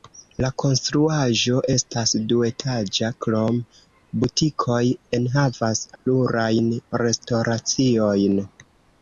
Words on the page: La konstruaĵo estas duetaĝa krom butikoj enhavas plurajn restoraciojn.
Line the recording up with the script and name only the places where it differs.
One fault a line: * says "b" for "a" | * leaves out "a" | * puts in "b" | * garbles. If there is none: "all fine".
all fine